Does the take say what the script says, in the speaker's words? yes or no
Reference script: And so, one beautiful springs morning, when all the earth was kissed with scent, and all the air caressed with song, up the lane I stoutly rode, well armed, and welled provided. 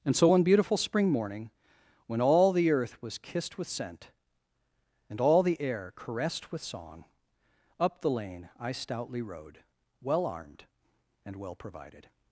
no